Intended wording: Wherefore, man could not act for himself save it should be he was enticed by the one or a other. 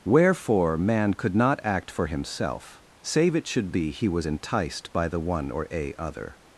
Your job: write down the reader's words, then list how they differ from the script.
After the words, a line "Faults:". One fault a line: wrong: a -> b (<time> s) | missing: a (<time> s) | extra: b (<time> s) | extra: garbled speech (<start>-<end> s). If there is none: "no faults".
Wherefore, man could not act for himself save it should be he was enticed by the one or a other.
Faults:
no faults